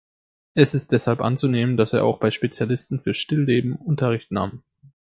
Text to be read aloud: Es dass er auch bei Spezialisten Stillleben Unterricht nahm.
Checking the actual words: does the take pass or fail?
fail